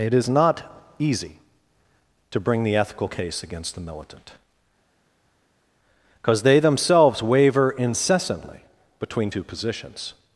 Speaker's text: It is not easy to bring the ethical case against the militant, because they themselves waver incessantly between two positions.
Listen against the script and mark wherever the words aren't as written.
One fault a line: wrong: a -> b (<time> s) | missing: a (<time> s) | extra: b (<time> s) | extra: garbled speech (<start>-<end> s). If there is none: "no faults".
no faults